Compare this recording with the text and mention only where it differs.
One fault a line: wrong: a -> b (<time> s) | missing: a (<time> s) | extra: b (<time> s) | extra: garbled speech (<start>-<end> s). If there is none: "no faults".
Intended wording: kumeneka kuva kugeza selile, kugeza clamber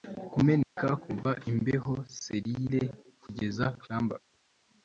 wrong: kugeza -> imbeho (1.5 s)